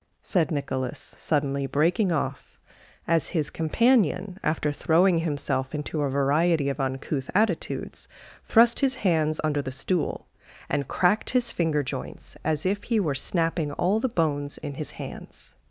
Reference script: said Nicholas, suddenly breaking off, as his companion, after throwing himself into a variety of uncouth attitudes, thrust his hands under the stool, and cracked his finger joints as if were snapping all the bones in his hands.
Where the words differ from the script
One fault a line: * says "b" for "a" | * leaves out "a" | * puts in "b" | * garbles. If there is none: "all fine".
* puts in "he"